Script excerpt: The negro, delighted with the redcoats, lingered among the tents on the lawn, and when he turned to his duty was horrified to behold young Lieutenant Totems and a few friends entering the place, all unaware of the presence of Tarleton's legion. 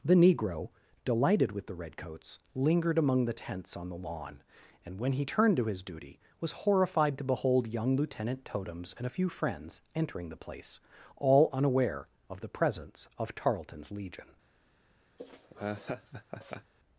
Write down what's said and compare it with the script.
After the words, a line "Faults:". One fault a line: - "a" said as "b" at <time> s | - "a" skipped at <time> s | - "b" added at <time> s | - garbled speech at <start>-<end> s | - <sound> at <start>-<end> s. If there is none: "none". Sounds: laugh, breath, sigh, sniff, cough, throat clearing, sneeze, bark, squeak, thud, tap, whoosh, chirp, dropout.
The negro, delighted with the redcoats, lingered among the tents on the lawn, and when he turned to his duty was horrified to behold young Lieutenant Totems and a few friends entering the place, all unaware of the presence of Tarleton's legion.
Faults:
- laugh at 15.2-16.7 s